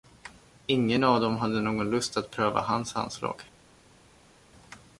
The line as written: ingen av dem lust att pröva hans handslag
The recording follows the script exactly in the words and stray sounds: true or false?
false